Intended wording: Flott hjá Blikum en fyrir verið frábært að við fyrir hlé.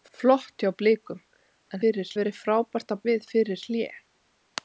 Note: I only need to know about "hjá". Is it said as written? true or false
true